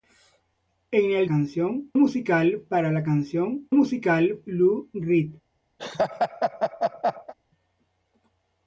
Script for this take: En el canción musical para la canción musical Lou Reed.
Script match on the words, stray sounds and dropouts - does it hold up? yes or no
no